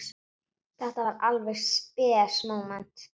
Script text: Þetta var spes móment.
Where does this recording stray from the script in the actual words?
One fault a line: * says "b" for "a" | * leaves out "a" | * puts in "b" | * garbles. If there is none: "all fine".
* puts in "alveg"